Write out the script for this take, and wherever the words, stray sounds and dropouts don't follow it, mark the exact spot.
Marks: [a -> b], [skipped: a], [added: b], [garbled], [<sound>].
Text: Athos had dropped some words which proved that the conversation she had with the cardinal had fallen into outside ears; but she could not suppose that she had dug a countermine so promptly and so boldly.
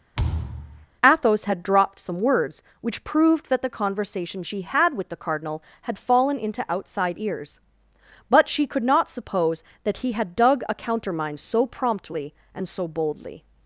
[thud] Athos had dropped some words which proved that the conversation she had with the cardinal had fallen into outside ears; but she could not suppose that [she -> he] had dug a countermine so promptly and so boldly.